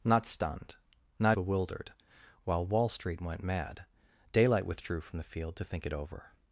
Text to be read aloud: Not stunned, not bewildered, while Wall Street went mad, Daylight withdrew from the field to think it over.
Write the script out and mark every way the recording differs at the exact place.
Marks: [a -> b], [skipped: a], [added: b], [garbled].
Not stunned, not bewildered, while Wall Street went mad, Daylight withdrew from the field to think it over.